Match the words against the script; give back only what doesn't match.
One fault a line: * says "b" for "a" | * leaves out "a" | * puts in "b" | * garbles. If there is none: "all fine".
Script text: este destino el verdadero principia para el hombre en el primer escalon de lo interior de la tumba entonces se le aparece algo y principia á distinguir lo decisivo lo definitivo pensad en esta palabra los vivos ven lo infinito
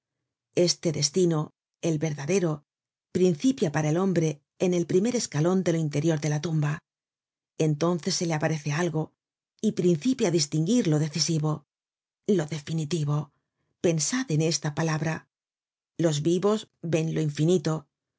all fine